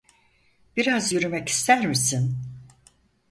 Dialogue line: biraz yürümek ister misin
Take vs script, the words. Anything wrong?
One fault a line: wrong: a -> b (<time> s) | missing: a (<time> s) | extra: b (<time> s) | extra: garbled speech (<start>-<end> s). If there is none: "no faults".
no faults